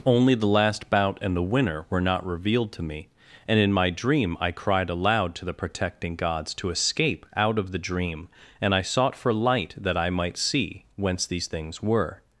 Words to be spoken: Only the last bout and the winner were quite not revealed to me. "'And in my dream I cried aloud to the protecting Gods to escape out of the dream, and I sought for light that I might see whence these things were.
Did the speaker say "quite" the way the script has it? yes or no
no